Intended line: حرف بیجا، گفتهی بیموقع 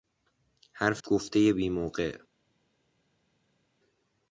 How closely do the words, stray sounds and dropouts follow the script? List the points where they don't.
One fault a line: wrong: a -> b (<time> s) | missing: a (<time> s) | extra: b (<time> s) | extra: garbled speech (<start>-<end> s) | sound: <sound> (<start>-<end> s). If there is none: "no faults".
missing: بیجا (1.0 s)